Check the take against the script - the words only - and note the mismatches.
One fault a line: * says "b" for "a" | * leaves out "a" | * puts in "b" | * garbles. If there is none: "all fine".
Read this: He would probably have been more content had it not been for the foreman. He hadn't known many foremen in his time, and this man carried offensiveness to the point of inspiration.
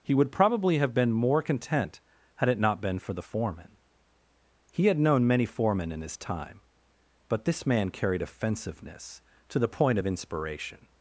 * says "had" for "hadn't"
* says "but" for "and"